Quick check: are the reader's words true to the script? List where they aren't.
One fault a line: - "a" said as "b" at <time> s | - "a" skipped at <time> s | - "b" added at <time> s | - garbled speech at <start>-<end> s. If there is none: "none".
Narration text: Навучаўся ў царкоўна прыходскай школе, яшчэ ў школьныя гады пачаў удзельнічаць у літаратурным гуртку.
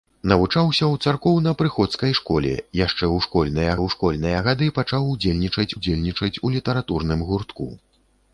- "ў школьныя" added at 3.8 s
- "удзельнічаць" added at 5.8 s